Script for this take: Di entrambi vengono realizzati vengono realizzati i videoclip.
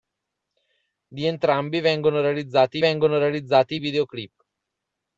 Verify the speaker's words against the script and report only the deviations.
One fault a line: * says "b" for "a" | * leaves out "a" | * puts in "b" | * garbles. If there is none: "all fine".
all fine